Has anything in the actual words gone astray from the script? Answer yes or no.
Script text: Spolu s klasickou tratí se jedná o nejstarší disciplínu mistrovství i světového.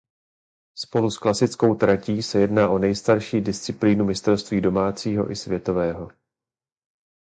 yes